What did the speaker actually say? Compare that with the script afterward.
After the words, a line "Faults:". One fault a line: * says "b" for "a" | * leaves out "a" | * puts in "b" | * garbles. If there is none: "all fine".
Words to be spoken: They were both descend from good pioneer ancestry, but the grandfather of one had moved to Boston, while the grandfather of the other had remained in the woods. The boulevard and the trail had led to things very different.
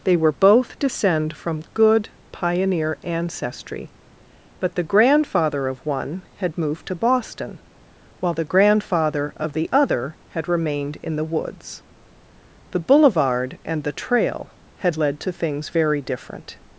They were both descend from good pioneer ancestry, but the grandfather of one had moved to Boston, while the grandfather of the other had remained in the woods. The boulevard and the trail had led to things very different.
Faults:
all fine